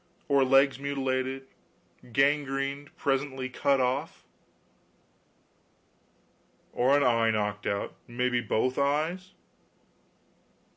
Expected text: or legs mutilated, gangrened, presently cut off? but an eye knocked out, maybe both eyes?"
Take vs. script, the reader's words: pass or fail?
fail